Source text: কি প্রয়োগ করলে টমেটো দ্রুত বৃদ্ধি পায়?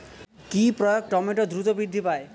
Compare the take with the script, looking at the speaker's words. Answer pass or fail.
fail